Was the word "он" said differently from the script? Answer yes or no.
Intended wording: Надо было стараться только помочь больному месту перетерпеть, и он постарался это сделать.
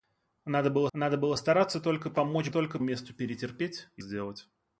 yes